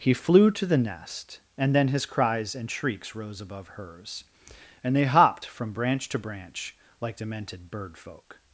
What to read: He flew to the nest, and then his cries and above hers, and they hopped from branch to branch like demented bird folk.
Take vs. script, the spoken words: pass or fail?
fail